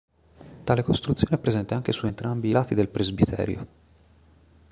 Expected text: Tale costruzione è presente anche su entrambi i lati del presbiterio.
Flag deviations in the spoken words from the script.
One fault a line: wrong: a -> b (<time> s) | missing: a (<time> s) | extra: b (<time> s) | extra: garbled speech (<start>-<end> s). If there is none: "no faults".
no faults